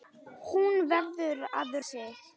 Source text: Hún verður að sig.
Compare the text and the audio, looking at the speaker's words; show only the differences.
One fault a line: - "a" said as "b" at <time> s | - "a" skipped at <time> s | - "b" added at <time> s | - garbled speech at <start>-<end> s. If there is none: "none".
none